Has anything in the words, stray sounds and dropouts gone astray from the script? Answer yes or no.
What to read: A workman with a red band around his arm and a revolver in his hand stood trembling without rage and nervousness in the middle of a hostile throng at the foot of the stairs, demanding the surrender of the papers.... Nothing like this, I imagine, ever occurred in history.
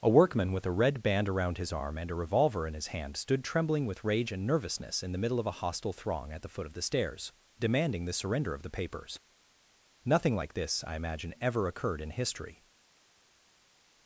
yes